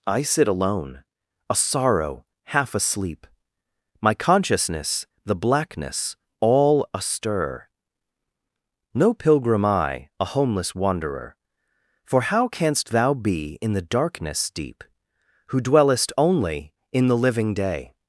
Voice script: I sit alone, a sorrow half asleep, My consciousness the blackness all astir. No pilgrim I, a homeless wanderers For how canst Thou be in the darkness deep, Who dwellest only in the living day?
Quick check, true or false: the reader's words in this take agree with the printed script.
false